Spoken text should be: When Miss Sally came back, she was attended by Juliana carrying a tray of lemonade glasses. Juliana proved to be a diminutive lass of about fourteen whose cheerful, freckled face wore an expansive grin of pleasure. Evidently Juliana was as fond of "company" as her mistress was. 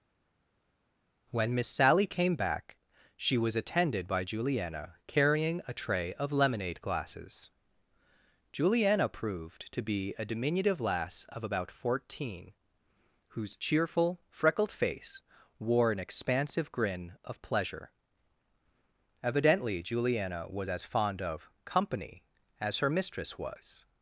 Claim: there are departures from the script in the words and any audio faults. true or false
false